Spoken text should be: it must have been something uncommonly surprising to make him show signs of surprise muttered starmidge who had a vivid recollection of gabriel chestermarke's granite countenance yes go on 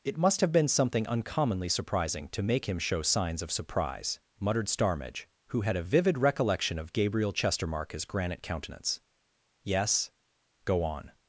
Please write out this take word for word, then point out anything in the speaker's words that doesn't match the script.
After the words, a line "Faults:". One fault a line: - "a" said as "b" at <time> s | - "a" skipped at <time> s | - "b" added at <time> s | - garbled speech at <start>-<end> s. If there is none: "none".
it must have been something uncommonly surprising to make him show signs of surprise muttered starmidge who had a vivid recollection of gabriel chestermarke's granite countenance yes go on
Faults:
none